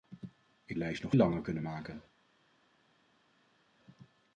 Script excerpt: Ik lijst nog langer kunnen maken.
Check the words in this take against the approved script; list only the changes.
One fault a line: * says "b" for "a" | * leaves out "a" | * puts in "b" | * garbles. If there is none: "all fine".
all fine